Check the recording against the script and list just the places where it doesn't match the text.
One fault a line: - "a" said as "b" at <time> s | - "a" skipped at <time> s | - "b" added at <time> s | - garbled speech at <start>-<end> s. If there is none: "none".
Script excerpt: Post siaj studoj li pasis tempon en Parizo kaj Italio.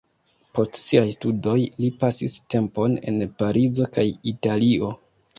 none